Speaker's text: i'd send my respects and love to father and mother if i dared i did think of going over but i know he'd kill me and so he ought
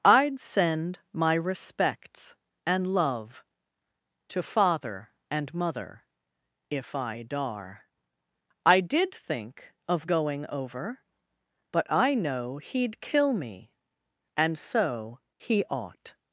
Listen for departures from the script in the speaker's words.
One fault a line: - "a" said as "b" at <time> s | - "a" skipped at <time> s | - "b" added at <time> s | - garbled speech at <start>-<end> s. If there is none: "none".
- "dared" said as "dar" at 7.2 s